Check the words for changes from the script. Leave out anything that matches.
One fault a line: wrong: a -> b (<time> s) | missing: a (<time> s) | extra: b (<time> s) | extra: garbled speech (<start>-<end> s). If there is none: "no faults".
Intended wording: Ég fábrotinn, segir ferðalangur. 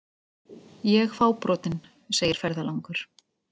no faults